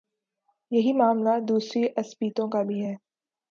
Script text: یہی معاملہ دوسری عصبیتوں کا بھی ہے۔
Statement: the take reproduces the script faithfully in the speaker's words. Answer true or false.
true